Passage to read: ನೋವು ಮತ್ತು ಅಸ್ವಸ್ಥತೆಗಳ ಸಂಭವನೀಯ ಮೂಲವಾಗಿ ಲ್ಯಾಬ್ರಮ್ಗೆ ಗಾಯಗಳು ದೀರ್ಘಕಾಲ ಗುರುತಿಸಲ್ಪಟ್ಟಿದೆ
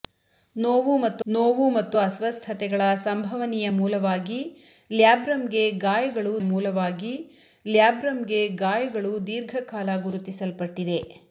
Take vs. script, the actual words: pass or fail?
fail